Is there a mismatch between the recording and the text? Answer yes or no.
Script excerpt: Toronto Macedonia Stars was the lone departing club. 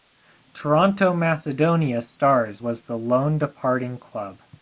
no